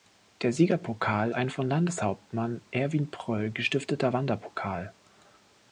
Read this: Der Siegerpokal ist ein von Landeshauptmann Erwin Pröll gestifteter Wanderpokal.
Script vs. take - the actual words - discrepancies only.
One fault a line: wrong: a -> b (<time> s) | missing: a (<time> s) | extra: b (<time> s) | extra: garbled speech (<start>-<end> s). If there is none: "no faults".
missing: ist (1.3 s)